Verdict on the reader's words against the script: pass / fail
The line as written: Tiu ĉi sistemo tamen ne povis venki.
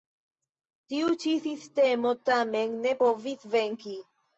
pass